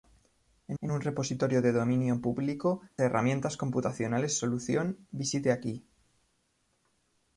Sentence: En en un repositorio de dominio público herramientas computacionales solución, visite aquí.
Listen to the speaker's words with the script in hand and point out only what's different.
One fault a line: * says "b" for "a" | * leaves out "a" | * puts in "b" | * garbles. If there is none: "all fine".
all fine